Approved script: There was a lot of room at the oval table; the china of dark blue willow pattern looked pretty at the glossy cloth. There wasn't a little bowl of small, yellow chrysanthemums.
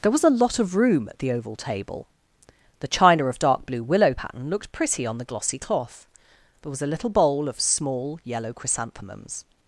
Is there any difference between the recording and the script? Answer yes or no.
yes